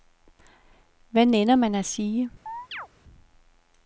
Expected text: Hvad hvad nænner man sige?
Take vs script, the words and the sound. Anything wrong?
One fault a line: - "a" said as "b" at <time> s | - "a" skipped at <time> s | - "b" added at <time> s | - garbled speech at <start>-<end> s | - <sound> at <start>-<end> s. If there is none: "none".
- "hvad" skipped at 1.2 s
- "at" added at 1.8 s
- chirp at 2.5-2.9 s